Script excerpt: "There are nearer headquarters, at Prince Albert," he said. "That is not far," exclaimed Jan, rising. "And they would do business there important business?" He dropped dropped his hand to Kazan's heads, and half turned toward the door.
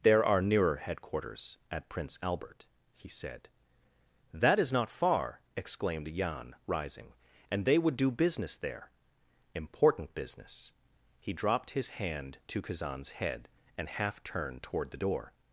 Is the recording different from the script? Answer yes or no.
yes